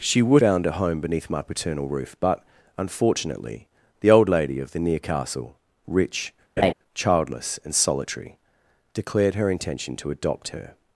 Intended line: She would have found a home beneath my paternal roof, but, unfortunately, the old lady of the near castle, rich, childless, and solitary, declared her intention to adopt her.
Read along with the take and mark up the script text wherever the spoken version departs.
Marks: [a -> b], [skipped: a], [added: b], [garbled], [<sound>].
She would [skipped: have] found a home beneath my paternal roof, but, unfortunately, the old lady of the near castle, rich, [laugh] childless, and solitary, declared her intention to adopt her.